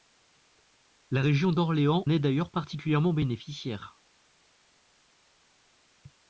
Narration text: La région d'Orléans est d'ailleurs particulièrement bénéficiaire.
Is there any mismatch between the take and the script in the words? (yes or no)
no